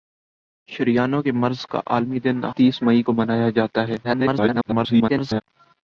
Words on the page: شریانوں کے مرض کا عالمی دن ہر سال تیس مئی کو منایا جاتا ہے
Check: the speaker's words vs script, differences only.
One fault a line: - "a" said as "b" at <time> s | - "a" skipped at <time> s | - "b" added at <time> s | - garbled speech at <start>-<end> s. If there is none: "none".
- "ہر سال" skipped at 2.4 s
- garbled speech at 4.0-5.4 s